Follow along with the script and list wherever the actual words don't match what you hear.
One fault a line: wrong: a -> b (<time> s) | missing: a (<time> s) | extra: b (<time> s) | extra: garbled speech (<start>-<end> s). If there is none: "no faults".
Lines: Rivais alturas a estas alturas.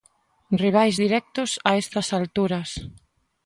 wrong: alturas -> directos (1.0 s)